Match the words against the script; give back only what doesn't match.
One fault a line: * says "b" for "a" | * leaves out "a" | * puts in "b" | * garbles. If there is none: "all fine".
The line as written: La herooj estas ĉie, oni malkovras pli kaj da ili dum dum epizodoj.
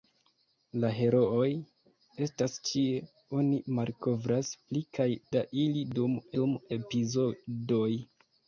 all fine